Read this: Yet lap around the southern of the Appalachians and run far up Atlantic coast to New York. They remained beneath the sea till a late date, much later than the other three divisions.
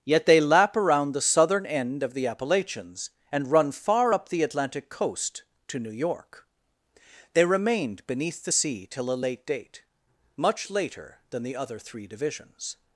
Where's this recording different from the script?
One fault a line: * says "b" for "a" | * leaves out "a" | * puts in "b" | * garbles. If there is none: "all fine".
* puts in "they"
* puts in "end"
* puts in "the"